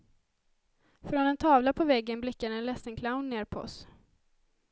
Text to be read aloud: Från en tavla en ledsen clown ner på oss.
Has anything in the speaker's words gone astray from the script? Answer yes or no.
yes